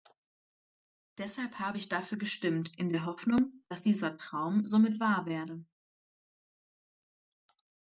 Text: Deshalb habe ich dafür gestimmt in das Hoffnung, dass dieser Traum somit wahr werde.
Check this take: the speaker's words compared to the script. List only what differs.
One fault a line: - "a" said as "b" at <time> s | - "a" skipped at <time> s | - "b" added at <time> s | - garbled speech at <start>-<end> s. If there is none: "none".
- "das" said as "der" at 2.9 s